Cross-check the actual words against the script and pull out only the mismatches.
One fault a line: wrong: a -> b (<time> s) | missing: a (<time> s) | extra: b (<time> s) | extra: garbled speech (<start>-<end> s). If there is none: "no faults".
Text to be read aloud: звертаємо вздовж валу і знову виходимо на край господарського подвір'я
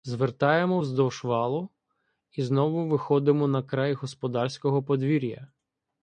no faults